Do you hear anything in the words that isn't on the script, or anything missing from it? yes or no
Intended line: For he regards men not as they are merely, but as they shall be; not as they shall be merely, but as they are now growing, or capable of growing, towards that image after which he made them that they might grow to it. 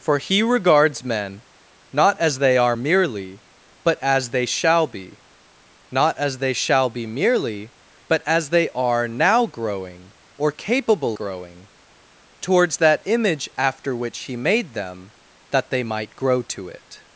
yes